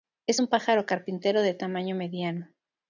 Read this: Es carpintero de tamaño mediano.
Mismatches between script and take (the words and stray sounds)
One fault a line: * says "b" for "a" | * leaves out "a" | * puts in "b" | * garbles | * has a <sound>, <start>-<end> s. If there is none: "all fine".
* puts in "un pájaro"